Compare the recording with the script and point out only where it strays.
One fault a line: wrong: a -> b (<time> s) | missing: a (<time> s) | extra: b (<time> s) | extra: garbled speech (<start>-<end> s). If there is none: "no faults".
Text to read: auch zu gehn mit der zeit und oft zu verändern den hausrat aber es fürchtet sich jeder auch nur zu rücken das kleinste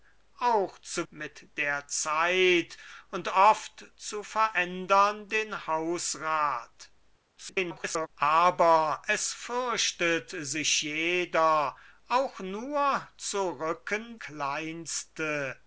missing: gehn (1.1 s)
extra: garbled speech (7.4-8.1 s)
missing: das (14.2 s)